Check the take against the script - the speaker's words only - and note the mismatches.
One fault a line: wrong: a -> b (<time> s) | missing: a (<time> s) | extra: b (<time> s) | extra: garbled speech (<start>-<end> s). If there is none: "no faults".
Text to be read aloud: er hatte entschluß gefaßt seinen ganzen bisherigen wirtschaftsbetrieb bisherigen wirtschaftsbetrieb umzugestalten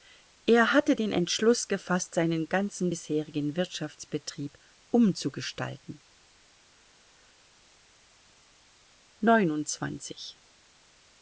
extra: den (0.9 s)
missing: bisherigen wirtschaftsbetrieb (4.6 s)